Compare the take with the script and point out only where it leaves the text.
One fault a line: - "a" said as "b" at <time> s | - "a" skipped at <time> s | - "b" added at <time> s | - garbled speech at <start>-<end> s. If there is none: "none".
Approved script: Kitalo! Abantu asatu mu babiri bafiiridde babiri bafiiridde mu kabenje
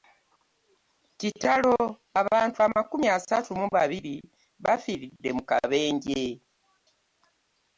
- "amakumi" added at 2.7 s
- "babiri bafiiridde" skipped at 5.3 s